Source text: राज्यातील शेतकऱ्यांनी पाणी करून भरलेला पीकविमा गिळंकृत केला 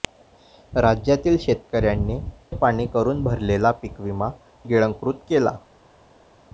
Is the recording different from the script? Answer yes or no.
no